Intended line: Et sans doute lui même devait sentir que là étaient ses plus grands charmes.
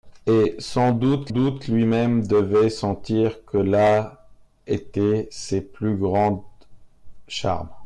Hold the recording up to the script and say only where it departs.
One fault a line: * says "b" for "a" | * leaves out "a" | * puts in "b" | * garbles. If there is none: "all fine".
* puts in "doute"